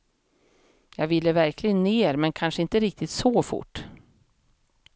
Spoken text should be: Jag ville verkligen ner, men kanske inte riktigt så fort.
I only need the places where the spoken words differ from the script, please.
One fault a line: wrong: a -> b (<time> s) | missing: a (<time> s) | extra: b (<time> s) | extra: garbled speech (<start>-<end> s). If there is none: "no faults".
no faults